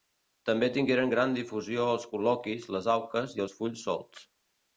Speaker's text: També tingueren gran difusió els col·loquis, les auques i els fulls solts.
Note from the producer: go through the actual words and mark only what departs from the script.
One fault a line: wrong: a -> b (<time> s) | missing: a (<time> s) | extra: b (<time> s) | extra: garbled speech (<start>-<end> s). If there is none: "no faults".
no faults